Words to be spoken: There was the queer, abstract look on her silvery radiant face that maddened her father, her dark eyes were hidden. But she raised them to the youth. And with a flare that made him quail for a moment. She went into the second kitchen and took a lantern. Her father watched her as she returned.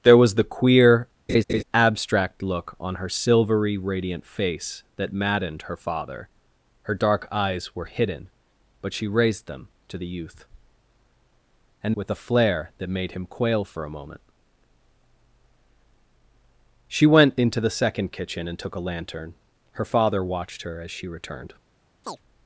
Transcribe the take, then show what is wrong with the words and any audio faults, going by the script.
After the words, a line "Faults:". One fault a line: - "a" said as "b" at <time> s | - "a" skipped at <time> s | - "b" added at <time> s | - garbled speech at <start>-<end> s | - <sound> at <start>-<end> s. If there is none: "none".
There was the queer, abstract look on her silvery radiant face that maddened her father, her dark eyes were hidden. But she raised them to the youth. And with a flare that made him quail for a moment. She went into the second kitchen and took a lantern. Her father watched her as she returned.
Faults:
- laugh at 1.3-1.6 s
- chirp at 22.0-22.2 s